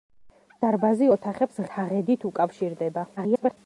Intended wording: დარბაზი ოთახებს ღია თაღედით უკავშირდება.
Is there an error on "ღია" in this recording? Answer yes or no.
yes